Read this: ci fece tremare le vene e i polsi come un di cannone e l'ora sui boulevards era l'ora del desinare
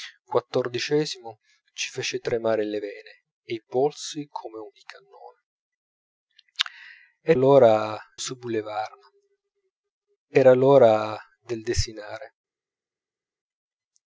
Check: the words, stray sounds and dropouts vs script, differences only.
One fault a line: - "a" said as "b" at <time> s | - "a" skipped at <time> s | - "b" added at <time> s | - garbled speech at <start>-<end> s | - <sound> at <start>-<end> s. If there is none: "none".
none